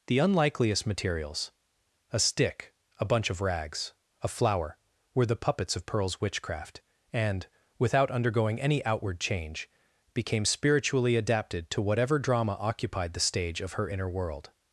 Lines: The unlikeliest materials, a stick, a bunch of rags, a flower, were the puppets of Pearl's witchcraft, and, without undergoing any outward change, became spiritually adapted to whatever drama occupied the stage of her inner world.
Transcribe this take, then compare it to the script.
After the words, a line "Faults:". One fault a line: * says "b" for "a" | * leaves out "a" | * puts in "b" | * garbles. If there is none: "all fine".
The unlikeliest materials, a stick, a bunch of rags, a flower, were the puppets of Pearl's witchcraft, and, without undergoing any outward change, became spiritually adapted to whatever drama occupied the stage of her inner world.
Faults:
all fine